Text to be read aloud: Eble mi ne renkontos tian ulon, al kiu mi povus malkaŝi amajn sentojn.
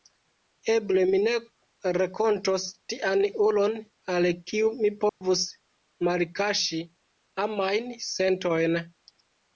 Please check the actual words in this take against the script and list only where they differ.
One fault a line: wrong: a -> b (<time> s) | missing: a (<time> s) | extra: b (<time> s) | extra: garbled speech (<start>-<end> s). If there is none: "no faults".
no faults